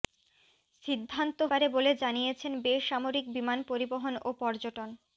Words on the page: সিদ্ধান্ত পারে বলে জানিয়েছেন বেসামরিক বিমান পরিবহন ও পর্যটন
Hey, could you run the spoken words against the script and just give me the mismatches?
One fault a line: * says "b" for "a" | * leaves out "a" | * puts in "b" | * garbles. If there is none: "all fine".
all fine